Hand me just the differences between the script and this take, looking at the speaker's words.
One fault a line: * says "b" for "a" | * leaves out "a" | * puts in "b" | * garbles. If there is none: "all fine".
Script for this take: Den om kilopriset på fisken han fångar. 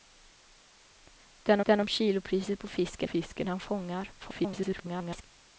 * puts in "den"
* puts in "fisken"
* garbles